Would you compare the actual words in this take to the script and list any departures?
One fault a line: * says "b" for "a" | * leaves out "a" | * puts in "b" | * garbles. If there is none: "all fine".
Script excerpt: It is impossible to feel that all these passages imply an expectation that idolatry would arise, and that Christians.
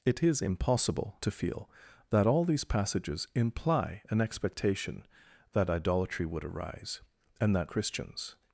all fine